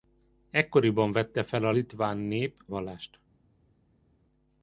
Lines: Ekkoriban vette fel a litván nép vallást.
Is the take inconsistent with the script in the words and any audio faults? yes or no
no